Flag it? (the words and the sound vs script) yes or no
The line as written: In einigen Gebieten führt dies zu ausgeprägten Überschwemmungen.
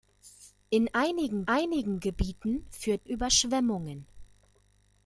yes